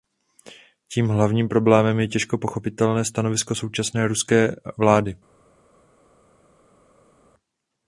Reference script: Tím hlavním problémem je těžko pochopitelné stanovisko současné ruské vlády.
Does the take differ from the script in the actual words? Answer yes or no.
no